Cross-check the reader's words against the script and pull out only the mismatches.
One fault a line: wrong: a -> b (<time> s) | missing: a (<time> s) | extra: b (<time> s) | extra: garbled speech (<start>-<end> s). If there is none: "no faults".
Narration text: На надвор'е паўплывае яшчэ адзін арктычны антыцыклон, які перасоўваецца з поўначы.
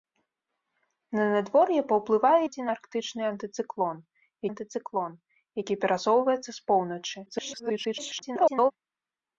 missing: яшчэ (2.4 s)
extra: антыцыклон (4.5 s)
extra: garbled speech (7.3-8.7 s)